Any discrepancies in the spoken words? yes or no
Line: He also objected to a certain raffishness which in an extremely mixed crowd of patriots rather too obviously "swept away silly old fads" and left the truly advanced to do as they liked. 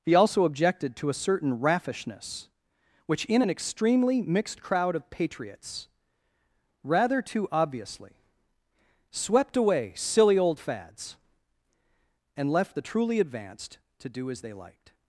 no